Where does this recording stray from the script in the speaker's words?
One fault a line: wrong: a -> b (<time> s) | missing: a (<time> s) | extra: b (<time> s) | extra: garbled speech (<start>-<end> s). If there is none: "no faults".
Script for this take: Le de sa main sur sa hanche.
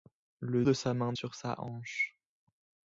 no faults